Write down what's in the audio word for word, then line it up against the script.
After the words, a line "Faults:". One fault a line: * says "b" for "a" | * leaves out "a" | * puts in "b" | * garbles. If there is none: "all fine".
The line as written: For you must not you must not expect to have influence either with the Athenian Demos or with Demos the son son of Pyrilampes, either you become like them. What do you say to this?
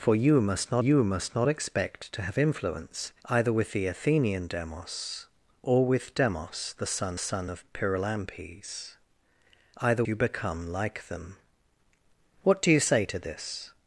For you must not you must not expect to have influence either with the Athenian Demos or with Demos the son son of Pyrilampes, either you become like them. What do you say to this?
Faults:
all fine